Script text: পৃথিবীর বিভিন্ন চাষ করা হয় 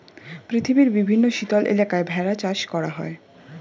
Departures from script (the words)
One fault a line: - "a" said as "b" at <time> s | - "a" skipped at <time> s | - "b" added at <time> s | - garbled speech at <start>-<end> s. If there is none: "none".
- "শীতল এলাকায় ভেড়া" added at 1.3 s